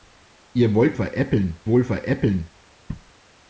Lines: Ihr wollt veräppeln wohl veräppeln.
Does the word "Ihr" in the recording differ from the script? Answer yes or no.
no